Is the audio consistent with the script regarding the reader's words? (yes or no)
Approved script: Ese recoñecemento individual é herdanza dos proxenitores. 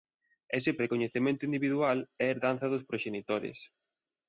yes